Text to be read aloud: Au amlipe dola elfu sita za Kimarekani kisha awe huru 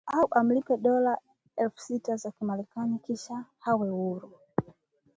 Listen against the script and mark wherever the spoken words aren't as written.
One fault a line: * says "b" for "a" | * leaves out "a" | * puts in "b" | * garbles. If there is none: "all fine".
all fine